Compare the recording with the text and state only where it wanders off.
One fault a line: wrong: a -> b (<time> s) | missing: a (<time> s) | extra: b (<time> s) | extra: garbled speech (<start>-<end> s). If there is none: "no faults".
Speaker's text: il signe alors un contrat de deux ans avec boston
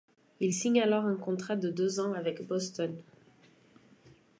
no faults